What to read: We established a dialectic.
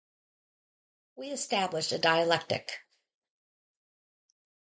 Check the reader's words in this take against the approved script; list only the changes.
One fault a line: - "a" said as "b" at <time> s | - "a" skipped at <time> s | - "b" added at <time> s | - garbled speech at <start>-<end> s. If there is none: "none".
none